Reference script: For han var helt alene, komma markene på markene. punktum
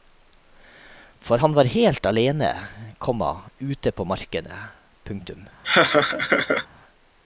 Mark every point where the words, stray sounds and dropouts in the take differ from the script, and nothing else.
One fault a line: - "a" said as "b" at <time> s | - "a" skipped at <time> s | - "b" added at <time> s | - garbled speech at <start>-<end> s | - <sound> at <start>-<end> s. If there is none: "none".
- "markene" said as "ute" at 3.6 s
- laugh at 5.6-6.7 s